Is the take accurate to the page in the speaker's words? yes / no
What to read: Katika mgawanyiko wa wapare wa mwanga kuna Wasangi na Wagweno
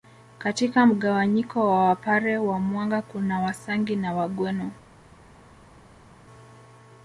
yes